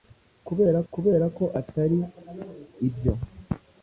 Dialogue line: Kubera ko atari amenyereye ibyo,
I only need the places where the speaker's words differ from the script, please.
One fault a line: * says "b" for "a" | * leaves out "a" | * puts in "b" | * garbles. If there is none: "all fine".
* puts in "kubera"
* leaves out "amenyereye"